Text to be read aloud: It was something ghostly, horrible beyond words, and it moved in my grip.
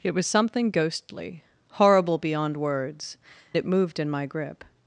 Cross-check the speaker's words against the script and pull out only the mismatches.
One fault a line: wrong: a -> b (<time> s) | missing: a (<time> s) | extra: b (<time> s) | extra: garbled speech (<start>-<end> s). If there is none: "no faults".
missing: and (3.2 s)